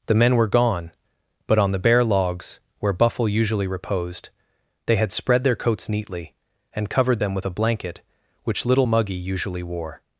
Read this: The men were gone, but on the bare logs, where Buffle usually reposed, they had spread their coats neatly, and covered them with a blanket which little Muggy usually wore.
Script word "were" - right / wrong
right